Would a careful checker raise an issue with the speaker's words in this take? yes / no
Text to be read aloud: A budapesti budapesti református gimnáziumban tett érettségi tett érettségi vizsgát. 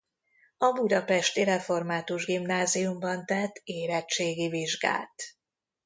yes